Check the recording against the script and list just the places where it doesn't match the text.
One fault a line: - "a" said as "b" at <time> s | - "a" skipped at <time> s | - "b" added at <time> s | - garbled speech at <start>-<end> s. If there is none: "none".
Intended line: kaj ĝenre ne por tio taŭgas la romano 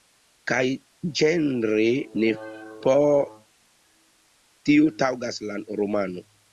none